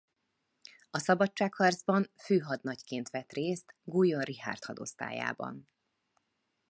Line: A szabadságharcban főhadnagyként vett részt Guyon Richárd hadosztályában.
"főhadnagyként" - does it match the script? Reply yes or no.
yes